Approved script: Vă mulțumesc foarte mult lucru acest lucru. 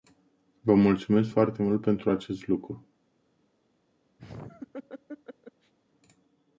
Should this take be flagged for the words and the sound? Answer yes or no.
yes